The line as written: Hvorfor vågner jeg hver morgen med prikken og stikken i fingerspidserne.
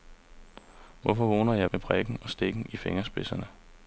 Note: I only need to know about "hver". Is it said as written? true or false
false